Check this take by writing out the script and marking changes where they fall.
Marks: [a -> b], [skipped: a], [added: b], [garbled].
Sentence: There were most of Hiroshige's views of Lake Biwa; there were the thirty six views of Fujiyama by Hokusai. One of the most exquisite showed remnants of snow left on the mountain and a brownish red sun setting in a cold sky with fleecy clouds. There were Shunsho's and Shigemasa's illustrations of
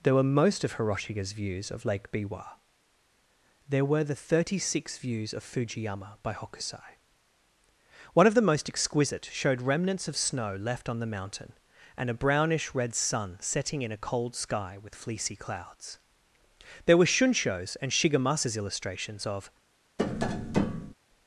There were most of Hiroshige's views of Lake Biwa; there were the thirty six views of Fujiyama by Hokusai. One of the most exquisite showed remnants of snow left on the mountain and a brownish red sun setting in a cold sky with fleecy clouds. There were Shunsho's and Shigemasa's illustrations of